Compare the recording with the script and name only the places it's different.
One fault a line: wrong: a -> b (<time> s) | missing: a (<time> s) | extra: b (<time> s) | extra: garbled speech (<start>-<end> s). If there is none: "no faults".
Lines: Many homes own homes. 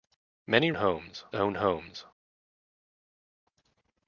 no faults